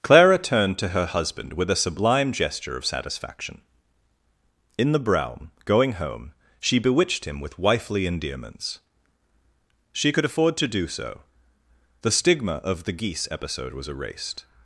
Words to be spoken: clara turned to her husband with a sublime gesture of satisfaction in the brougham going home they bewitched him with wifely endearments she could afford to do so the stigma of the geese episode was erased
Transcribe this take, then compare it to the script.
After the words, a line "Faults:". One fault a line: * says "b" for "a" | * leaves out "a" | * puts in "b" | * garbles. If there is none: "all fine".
clara turned to her husband with a sublime gesture of satisfaction in the brougham going home she bewitched him with wifely endearments she could afford to do so the stigma of the geese episode was erased
Faults:
* says "she" for "they"